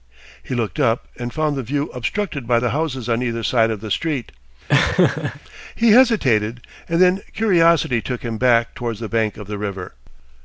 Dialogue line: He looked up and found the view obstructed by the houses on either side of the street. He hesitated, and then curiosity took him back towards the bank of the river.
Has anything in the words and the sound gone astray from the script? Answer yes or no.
yes